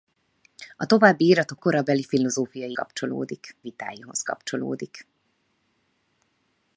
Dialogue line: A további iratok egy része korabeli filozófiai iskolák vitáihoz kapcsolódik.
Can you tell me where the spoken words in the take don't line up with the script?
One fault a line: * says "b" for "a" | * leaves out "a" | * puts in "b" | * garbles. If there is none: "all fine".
* leaves out "egy része"
* says "kapcsolódik" for "iskolák"